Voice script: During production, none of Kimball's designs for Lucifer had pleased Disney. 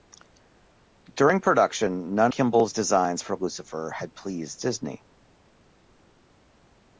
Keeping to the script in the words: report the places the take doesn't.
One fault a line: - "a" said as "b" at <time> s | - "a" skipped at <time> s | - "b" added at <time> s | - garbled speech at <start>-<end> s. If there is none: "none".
- "of" skipped at 2.3 s